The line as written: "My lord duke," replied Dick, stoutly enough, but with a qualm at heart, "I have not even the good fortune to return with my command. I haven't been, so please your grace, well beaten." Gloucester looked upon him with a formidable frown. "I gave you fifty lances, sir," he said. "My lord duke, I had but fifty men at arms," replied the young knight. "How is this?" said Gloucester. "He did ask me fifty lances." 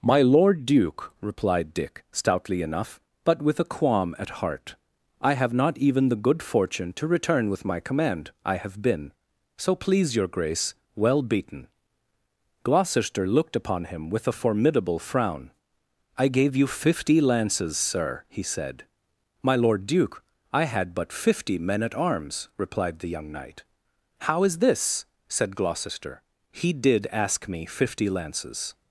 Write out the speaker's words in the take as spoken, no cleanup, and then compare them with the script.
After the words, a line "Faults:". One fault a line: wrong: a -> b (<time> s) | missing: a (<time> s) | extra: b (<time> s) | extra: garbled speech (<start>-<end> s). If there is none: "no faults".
"My lord duke," replied Dick, stoutly enough, but with a qualm at heart, "I have not even the good fortune to return with my command. I have been, so please your grace, well beaten." Gloucester looked upon him with a formidable frown. "I gave you fifty lances, sir," he said. "My lord duke, I had but fifty men at arms," replied the young knight. "How is this?" said Gloucester. "He did ask me fifty lances."
Faults:
wrong: haven't -> have (8.6 s)